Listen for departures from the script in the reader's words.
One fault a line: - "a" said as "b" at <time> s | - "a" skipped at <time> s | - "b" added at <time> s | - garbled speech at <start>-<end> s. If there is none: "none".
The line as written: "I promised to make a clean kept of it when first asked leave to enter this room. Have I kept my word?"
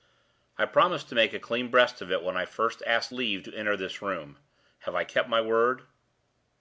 - "kept" said as "breast" at 1.7 s
- "I" added at 2.3 s